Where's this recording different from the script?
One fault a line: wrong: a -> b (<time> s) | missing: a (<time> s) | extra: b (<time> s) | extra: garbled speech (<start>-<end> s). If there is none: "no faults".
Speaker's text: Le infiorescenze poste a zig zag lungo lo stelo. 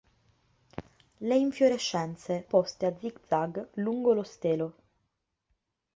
no faults